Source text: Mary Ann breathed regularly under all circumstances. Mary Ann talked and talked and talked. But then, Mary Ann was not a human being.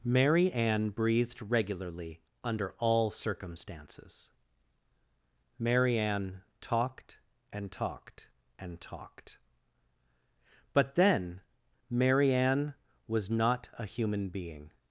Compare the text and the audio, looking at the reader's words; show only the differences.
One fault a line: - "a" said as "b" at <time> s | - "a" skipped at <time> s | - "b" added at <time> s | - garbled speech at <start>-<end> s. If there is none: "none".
none